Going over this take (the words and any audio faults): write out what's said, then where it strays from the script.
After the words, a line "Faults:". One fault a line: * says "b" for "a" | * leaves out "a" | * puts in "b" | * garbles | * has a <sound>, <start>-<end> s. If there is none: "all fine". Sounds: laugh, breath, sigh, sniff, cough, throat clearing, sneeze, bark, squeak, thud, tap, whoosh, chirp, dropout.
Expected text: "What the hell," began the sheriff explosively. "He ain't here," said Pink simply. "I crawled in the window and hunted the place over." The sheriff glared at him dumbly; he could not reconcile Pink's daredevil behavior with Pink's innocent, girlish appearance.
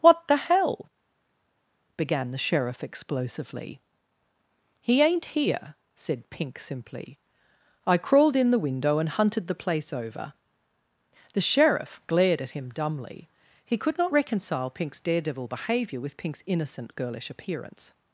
"What the hell," began the sheriff explosively. "He ain't here," said Pink simply. "I crawled in the window and hunted the place over." The sheriff glared at him dumbly; he could not reconcile Pink's daredevil behavior with Pink's innocent, girlish appearance.
Faults:
all fine